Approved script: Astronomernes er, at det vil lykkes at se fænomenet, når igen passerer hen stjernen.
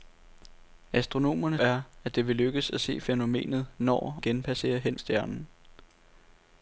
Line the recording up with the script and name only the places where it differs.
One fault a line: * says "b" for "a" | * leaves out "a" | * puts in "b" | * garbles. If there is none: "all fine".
all fine